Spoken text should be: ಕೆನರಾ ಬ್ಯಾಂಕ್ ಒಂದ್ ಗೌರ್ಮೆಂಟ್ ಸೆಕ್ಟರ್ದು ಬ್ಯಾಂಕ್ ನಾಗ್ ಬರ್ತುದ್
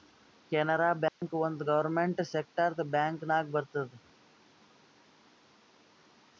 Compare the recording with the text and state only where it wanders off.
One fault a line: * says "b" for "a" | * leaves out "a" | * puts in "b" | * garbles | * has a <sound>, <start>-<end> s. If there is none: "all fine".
* has a dropout, 1.1-1.2 s